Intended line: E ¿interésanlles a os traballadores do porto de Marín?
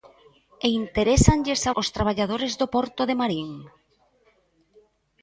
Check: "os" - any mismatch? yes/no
no